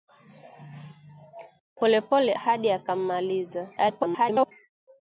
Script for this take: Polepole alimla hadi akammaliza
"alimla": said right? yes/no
no